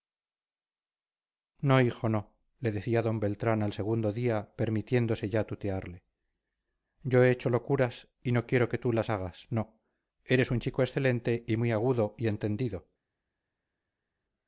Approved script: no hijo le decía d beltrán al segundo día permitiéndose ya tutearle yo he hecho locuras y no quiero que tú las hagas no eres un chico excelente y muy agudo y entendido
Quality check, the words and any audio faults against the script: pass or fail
fail